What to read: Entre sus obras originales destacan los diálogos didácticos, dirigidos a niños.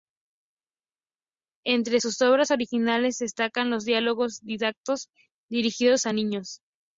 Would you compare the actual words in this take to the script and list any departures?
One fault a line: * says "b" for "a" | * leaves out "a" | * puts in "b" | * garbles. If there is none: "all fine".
all fine